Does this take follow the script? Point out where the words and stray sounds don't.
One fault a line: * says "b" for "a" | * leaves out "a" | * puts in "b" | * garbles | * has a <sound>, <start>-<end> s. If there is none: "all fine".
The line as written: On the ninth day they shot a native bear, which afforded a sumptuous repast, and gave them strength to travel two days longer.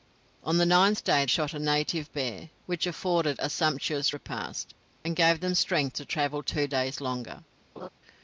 * leaves out "they"
* has a laugh, 7.8-7.9 s